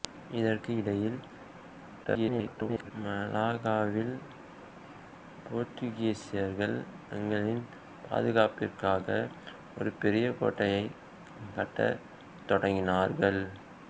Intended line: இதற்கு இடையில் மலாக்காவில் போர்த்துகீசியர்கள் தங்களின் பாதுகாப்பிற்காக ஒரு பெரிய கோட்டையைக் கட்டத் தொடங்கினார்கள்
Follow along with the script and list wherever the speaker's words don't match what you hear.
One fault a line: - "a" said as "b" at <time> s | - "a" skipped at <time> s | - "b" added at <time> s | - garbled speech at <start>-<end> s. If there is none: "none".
- garbled speech at 2.0-2.9 s